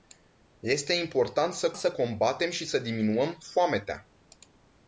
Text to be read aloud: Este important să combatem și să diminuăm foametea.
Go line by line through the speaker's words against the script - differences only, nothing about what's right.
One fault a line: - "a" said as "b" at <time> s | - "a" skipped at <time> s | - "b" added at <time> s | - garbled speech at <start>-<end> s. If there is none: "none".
- "să" added at 1.7 s